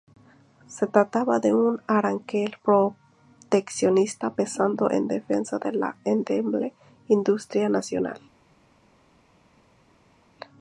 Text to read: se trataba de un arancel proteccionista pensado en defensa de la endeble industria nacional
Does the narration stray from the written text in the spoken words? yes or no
no